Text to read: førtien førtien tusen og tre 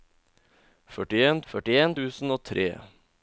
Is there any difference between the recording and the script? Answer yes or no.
no